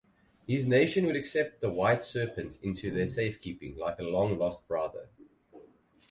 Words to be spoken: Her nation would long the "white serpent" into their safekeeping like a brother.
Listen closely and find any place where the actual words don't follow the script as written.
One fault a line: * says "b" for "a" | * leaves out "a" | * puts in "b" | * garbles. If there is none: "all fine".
* says "His" for "Her"
* says "accept" for "long"
* puts in "long lost"